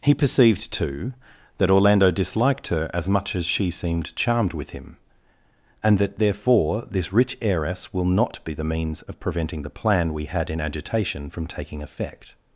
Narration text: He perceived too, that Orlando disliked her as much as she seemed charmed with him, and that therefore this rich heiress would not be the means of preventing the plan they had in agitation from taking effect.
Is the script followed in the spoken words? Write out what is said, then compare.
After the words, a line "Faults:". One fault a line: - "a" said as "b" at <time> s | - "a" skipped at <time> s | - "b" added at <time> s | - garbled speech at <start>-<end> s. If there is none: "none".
He perceived too, that Orlando disliked her as much as she seemed charmed with him, and that therefore this rich heiress will not be the means of preventing the plan we had in agitation from taking effect.
Faults:
- "would" said as "will" at 7.9 s
- "they" said as "we" at 10.1 s